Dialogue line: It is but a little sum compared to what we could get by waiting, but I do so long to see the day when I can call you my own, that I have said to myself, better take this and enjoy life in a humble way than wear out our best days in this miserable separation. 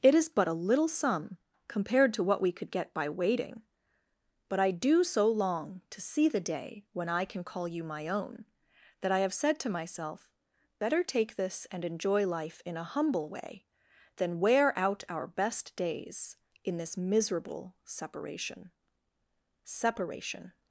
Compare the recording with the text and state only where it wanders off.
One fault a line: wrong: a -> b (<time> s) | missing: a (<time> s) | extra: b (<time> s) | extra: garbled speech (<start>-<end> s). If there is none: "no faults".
extra: separation (19.6 s)